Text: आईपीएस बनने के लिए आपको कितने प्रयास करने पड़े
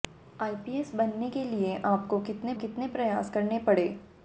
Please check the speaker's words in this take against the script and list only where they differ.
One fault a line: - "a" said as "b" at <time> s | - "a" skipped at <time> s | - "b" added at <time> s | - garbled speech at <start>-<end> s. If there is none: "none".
- "कितने" added at 2.6 s